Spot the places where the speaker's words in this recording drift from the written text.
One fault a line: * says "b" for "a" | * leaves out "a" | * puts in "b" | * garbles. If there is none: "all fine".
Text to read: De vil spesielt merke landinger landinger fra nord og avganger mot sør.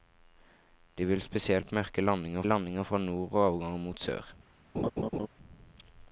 all fine